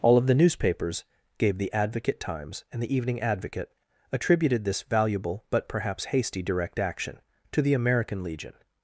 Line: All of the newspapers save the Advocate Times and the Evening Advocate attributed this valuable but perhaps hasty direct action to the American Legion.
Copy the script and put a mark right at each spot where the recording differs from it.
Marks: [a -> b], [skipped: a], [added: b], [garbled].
All of the newspapers [save -> gave] the Advocate Times and the Evening Advocate attributed this valuable but perhaps hasty direct action to the American Legion.